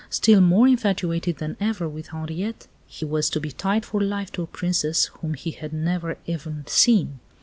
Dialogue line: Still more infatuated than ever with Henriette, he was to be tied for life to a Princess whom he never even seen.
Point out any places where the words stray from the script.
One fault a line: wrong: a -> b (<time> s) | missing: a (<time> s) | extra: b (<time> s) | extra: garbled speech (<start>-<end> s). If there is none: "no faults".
extra: had (5.5 s)